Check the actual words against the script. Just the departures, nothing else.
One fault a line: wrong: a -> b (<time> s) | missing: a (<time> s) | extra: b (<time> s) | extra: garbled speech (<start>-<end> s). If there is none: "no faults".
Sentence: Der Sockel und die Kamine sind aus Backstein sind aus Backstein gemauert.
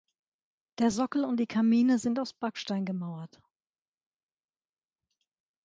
missing: sind aus Backstein (2.9 s)